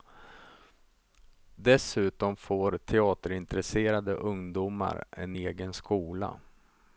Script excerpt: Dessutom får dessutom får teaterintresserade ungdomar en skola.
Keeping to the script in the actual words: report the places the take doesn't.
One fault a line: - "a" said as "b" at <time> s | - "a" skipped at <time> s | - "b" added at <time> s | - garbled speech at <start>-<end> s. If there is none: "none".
- "dessutom får" skipped at 2.8 s
- "egen" added at 5.3 s